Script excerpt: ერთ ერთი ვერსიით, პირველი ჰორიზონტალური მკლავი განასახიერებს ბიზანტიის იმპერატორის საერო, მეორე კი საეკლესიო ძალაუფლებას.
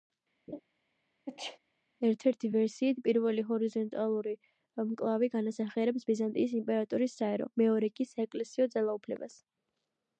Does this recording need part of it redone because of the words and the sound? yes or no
yes